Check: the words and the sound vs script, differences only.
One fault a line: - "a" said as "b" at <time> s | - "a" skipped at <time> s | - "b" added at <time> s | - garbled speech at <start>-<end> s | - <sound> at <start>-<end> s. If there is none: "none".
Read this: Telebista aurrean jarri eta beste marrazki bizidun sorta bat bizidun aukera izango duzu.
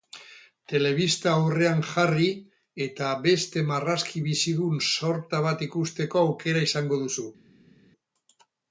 - "bizidun" said as "ikusteko" at 5.7 s